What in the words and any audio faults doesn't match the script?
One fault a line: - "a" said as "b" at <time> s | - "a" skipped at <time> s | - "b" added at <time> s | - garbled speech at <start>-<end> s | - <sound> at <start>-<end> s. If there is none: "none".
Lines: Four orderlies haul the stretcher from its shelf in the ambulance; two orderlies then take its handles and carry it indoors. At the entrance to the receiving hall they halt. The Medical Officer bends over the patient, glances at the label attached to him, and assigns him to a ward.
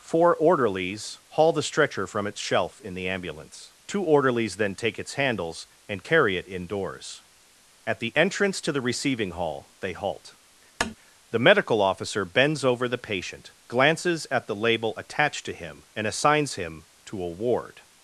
- tap at 10.8-11.0 s